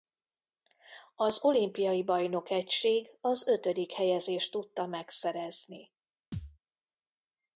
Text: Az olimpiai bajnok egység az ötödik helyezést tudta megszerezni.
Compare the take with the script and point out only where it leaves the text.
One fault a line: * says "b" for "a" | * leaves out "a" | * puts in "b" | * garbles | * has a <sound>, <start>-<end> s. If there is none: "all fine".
* has a thud, 6.3-6.6 s